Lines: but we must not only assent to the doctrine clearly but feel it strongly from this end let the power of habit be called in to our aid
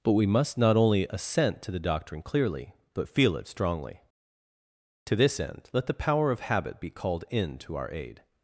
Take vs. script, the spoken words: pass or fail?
fail